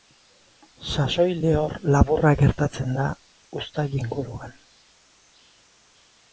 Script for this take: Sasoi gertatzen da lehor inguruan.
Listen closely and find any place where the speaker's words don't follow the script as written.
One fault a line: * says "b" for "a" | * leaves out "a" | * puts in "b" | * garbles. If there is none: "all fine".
* puts in "lehor laburra"
* says "uztail" for "lehor"